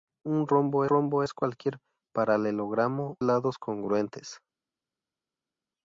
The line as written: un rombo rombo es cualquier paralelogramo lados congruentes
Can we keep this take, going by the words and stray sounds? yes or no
yes